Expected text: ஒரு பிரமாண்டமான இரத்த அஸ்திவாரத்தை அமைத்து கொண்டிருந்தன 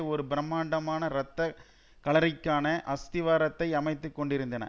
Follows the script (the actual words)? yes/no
no